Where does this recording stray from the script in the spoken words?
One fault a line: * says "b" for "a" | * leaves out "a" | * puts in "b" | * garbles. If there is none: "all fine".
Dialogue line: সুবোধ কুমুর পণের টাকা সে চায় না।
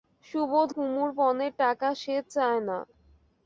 all fine